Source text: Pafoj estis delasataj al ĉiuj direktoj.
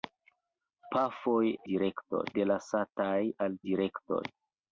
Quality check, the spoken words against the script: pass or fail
fail